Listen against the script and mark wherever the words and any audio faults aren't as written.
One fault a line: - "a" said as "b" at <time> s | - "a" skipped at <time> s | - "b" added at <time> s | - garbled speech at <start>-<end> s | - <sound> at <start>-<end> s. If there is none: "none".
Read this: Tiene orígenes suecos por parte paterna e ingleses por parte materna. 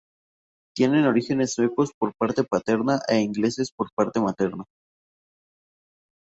none